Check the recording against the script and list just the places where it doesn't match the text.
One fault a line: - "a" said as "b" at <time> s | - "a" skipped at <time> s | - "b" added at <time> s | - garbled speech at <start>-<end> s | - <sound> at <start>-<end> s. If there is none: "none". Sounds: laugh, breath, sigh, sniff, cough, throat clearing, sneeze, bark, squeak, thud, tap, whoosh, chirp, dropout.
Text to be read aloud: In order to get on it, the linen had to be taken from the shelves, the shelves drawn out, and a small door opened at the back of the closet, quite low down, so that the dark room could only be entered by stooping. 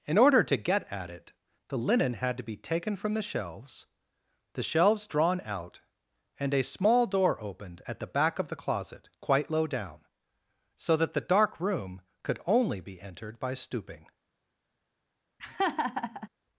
- "on" said as "at" at 0.9 s
- laugh at 15.4-16.3 s